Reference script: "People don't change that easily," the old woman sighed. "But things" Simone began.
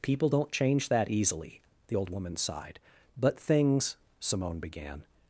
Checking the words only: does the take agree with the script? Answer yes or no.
yes